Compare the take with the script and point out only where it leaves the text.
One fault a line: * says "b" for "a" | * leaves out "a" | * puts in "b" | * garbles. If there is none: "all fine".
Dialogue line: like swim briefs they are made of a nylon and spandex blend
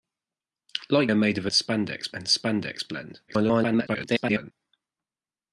* leaves out "swim briefs they"
* says "spandex" for "nylon"
* garbles